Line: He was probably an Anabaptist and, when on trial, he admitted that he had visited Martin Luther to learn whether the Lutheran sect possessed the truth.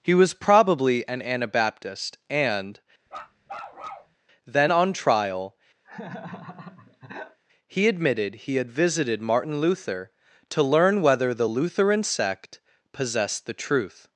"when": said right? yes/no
no